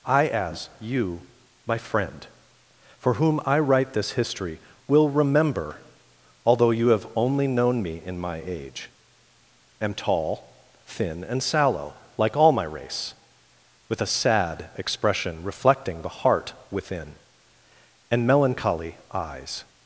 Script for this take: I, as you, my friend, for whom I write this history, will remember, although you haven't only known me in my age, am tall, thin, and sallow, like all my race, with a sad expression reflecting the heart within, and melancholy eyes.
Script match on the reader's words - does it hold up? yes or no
no